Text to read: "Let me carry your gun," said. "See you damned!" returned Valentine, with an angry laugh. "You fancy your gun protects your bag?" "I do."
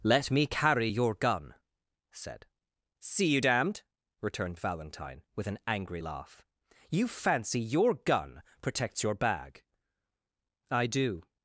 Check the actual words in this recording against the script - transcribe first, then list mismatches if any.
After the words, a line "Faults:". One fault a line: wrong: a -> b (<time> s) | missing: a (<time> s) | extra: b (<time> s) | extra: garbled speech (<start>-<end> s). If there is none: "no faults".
"Let me carry your gun," said. "See you damned!" returned Valentine, with an angry laugh. "You fancy your gun protects your bag?" "I do."
Faults:
no faults